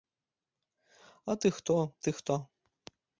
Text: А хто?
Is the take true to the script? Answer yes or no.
no